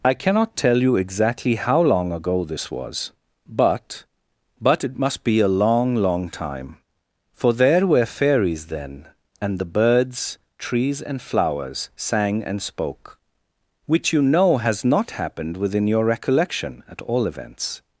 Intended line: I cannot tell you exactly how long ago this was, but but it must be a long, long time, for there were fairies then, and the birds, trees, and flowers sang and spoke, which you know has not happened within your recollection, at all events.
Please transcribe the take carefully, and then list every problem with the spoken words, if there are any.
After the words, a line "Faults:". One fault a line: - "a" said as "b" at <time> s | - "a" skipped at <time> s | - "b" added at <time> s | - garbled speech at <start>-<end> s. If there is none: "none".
I cannot tell you exactly how long ago this was, but but it must be a long, long time, for there were fairies then, and the birds, trees, and flowers sang and spoke, which you know has not happened within your recollection, at all events.
Faults:
none